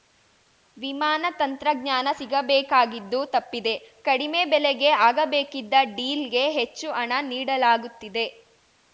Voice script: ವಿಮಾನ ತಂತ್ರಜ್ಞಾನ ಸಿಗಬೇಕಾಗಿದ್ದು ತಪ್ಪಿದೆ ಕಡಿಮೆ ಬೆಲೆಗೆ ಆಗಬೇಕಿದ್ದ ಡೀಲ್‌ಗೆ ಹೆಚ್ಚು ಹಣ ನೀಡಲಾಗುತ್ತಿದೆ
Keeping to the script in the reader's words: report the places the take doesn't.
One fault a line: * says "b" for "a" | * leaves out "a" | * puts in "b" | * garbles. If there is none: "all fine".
all fine